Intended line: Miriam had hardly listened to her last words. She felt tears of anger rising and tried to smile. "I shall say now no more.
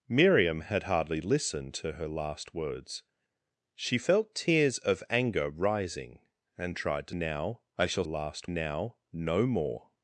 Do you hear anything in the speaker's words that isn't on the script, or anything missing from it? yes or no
yes